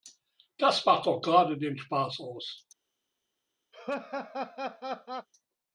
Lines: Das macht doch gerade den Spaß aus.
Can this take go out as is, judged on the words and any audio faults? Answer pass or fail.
fail